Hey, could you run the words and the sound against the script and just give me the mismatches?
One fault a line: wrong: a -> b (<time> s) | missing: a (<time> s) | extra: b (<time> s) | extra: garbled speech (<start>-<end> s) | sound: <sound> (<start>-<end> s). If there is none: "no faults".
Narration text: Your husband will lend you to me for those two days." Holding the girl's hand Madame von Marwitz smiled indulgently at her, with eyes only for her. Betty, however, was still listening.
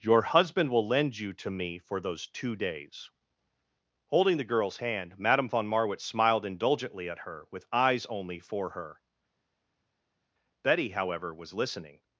missing: still (11.5 s)